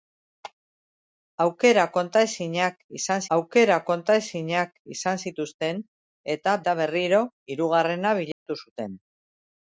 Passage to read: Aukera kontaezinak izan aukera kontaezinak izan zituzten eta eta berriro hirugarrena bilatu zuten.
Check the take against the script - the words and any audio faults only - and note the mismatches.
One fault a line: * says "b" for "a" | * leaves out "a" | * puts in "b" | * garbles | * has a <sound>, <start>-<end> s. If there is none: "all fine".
* has a dropout, 8.3-8.5 s